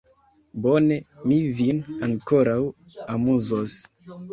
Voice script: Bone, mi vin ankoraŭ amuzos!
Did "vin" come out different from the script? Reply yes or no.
no